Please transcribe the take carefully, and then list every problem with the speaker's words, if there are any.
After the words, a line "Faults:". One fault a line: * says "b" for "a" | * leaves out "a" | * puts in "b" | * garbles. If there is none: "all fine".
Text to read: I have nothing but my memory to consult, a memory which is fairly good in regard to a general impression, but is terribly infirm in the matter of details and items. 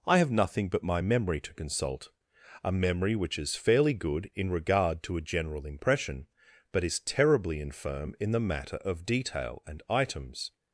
I have nothing but my memory to consult, a memory which is fairly good in regard to a general impression, but is terribly infirm in the matter of detail and items.
Faults:
* says "detail" for "details"